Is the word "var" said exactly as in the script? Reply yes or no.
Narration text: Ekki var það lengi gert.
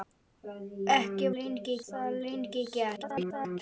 no